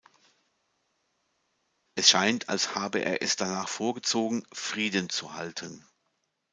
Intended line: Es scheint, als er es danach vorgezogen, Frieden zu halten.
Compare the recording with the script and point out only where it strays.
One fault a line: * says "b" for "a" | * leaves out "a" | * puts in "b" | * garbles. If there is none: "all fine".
* puts in "habe"